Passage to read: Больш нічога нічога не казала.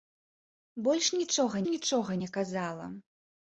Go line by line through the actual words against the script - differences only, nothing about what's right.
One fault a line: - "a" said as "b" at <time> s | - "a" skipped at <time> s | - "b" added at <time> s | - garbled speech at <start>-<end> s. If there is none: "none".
none